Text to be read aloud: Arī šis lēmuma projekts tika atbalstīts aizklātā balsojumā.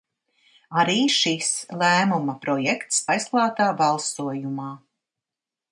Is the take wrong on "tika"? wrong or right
wrong